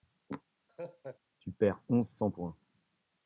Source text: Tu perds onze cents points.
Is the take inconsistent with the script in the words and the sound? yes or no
yes